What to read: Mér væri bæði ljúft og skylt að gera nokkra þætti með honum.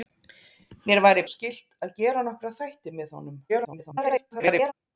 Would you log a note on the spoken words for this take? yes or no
yes